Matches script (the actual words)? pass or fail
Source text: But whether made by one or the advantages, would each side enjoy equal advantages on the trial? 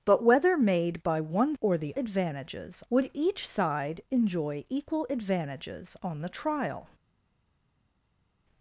pass